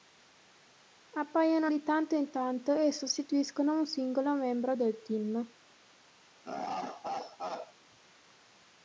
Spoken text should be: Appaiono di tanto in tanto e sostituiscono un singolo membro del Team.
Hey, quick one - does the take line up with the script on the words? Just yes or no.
yes